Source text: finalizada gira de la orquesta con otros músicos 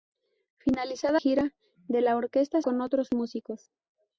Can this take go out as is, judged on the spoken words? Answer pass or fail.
pass